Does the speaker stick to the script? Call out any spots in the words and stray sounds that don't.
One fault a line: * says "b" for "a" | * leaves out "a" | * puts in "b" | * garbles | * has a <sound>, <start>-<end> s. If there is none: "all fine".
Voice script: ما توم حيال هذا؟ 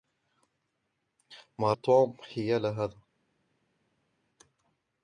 all fine